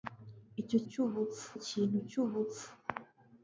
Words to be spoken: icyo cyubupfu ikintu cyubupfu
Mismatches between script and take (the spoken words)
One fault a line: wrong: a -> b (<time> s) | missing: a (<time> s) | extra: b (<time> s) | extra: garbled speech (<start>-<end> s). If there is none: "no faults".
no faults